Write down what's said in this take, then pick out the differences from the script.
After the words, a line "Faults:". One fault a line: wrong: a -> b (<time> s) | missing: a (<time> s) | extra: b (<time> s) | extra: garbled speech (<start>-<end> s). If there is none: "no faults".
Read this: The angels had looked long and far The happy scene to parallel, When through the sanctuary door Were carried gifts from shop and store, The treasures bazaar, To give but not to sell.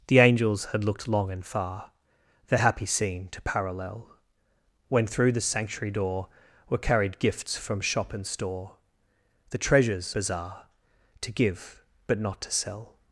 The angels had looked long and far The happy scene to parallel, When through the sanctuary door Were carried gifts from shop and store, The treasures bazaar, To give but not to sell.
Faults:
no faults